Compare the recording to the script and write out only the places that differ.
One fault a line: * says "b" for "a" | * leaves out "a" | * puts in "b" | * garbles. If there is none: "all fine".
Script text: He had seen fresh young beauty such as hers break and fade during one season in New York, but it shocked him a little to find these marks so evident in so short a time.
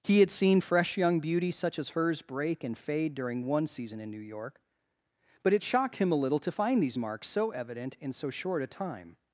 all fine